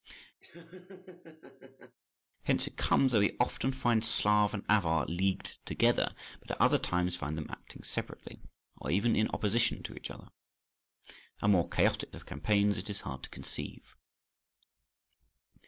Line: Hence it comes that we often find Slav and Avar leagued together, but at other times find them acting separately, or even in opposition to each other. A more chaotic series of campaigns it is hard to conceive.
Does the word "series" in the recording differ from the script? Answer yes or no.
yes